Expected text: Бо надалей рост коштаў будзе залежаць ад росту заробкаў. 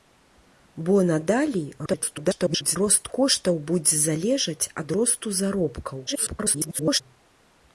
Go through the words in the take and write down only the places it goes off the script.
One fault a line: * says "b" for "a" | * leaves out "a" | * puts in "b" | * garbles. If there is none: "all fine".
* garbles
* garbles